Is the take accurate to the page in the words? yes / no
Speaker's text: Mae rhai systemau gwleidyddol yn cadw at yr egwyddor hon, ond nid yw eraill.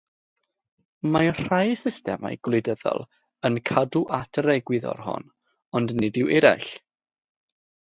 yes